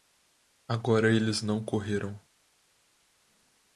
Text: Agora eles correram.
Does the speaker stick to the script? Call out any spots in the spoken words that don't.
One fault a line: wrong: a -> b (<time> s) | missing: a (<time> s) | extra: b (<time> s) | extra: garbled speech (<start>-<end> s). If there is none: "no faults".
extra: não (1.4 s)